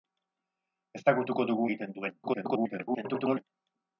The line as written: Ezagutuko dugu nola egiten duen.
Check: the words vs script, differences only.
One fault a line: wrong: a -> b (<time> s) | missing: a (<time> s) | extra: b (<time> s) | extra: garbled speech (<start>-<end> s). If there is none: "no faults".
missing: nola (1.7 s)
extra: garbled speech (2.2-3.4 s)